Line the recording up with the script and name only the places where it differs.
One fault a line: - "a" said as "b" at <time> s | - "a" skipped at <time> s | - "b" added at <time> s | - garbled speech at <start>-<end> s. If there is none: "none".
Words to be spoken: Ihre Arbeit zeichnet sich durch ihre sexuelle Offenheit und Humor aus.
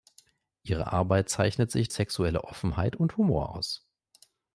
- "durch ihre" skipped at 1.9 s